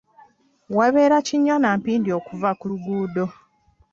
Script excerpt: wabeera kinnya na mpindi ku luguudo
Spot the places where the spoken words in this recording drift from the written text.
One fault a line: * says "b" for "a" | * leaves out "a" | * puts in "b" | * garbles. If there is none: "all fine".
* puts in "okuva"